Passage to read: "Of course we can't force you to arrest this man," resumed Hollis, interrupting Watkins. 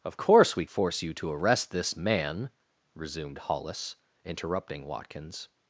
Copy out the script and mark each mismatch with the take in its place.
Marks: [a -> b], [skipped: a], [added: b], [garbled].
"Of course we [skipped: can't] force you to arrest this man," resumed Hollis, interrupting Watkins.